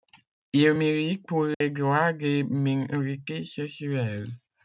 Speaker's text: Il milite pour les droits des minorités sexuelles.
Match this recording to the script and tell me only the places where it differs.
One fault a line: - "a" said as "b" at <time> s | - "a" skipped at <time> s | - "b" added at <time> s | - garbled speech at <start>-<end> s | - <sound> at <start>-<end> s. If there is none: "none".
- dropout at 1.5-1.6 s